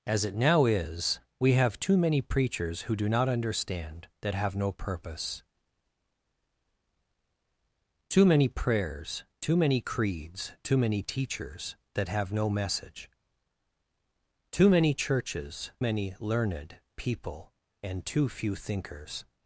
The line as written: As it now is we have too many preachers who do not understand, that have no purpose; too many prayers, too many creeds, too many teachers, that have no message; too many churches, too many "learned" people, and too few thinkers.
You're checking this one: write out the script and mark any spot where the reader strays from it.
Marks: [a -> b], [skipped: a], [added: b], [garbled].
As it now is we have too many preachers who do not understand, that have no purpose; too many prayers, too many creeds, too many teachers, that have no message; too many churches, [skipped: too] many "learned" people, and too few thinkers.